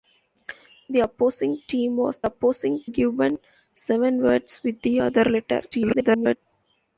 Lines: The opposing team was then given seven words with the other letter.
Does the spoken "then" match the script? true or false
false